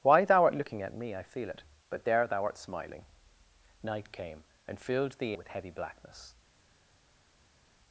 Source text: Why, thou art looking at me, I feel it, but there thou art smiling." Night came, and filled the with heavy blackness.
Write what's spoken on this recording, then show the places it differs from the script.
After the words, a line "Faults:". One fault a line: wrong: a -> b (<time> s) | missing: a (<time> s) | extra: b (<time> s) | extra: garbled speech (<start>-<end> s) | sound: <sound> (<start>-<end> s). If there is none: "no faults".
Why, thou art looking at me, I feel it, but there thou art smiling." Night came, and filled the with heavy blackness.
Faults:
no faults